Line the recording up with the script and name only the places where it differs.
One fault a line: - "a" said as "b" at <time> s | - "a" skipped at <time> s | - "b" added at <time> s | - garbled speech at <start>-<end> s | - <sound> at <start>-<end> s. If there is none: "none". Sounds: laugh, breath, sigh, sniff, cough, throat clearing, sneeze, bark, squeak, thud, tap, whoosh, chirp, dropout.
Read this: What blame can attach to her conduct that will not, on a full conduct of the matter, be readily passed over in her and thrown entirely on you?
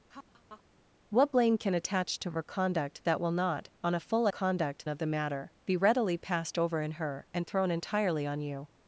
- laugh at 0.1-0.6 s